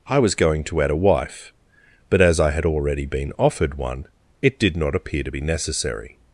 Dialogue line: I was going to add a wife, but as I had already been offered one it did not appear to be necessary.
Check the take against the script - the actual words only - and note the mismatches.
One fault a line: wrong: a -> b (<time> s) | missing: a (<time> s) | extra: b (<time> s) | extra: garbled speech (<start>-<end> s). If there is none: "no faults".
no faults